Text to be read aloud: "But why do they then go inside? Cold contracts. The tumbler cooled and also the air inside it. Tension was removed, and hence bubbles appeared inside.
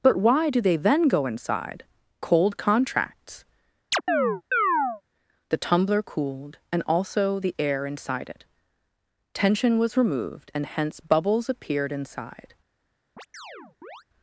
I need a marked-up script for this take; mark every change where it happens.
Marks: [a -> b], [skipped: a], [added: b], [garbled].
"But why do they then go inside? Cold contracts. The tumbler cooled and also the air inside it. Tension was removed, and hence bubbles appeared inside.